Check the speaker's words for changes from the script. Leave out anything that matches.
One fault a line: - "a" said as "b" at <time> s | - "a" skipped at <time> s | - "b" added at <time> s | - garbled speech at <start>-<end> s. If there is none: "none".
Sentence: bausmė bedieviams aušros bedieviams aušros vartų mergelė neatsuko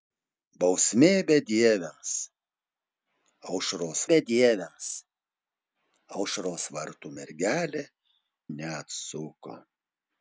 none